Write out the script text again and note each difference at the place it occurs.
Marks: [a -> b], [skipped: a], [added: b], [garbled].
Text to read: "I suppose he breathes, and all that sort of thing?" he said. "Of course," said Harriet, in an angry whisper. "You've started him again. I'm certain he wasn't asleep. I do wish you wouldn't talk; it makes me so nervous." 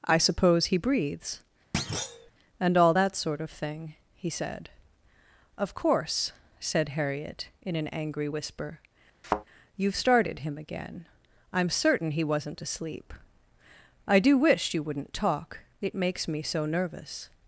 "I suppose he breathes, and all that sort of thing?" he said. "Of course," said Harriet, in an angry whisper. "You've started him again. I'm certain he wasn't asleep. I do wish you wouldn't talk; it makes me so nervous."